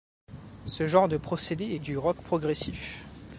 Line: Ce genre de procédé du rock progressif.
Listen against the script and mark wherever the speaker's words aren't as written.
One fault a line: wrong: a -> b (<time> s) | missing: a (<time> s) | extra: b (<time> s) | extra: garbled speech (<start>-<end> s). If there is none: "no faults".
no faults